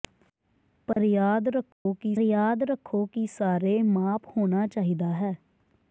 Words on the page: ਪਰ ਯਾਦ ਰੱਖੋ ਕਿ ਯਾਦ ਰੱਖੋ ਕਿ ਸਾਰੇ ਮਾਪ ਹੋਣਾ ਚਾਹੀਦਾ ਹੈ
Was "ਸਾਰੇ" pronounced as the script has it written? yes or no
yes